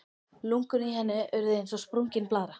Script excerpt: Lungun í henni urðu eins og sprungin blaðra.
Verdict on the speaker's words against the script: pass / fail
pass